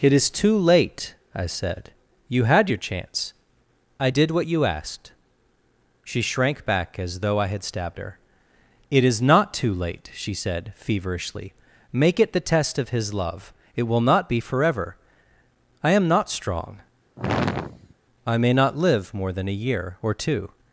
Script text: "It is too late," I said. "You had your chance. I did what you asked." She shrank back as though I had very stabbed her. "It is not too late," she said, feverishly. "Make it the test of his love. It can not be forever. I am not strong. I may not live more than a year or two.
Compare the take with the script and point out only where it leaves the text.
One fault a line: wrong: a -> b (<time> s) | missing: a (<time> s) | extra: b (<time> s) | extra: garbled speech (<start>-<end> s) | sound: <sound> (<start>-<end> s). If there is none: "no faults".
missing: very (7.6 s)
wrong: can -> will (13.9 s)
sound: sigh (17.2-17.9 s)